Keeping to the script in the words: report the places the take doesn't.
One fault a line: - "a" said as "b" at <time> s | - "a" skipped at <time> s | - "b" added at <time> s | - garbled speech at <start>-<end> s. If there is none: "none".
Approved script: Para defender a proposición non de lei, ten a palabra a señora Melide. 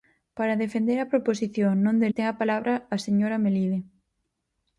- "lei" skipped at 2.1 s